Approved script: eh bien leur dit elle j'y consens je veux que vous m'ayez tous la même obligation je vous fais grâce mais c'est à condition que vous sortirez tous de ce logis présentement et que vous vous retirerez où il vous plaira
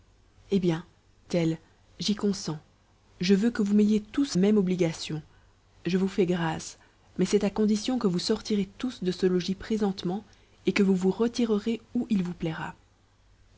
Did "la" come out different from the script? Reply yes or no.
yes